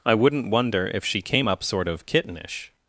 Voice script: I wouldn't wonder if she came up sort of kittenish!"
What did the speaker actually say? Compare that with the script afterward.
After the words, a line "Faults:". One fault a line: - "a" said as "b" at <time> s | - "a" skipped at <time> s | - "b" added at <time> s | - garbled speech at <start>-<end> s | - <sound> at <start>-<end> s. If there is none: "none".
I wouldn't wonder if she came up sort of kittenish!"
Faults:
none